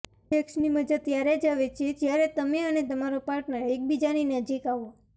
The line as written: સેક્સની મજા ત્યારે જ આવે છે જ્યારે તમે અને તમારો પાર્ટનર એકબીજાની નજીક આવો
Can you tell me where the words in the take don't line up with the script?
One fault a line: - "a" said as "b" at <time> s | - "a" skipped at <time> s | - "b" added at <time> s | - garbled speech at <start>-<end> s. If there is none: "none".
none